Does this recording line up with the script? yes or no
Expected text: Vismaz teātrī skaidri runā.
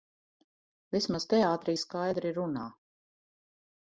yes